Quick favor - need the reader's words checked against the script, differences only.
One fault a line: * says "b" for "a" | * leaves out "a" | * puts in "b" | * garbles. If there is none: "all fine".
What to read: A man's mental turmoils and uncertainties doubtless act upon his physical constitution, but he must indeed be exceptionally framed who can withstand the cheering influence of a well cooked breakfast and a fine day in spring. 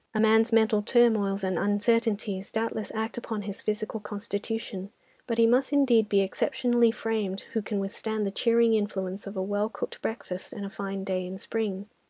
all fine